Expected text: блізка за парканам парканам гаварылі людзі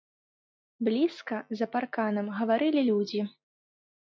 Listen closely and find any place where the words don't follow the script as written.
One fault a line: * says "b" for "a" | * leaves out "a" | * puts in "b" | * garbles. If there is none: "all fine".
* leaves out "парканам"